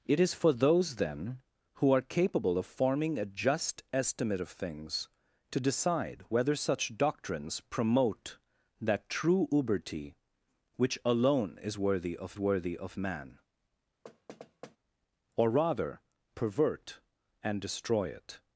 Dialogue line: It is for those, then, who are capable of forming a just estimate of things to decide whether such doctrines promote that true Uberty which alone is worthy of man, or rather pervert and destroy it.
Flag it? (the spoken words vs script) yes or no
yes